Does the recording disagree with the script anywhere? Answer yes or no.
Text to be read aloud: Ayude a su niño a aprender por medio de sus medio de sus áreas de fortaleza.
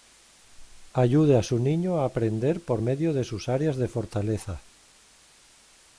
yes